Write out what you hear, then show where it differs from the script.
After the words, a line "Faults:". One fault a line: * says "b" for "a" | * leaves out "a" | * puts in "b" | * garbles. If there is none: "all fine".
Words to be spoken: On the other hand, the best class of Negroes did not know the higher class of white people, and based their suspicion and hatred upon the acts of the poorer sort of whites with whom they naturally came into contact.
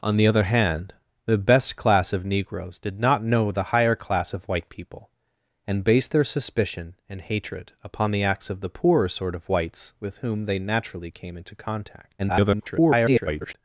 On the other hand, the best class of Negroes did not know the higher class of white people, and based their suspicion and hatred upon the acts of the poorer sort of whites with whom they naturally came into contact. [garbled]
Faults:
* garbles